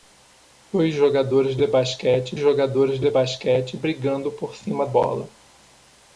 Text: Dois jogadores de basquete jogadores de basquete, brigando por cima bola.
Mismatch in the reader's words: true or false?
false